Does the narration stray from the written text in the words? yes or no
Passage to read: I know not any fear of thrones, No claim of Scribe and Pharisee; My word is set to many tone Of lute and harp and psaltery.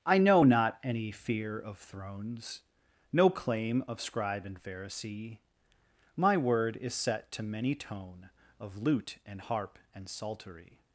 no